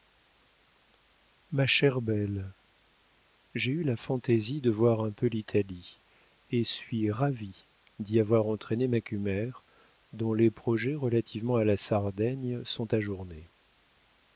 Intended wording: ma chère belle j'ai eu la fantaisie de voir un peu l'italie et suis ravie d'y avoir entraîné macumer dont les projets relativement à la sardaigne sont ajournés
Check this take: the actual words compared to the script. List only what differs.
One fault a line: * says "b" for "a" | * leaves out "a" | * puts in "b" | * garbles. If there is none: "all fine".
all fine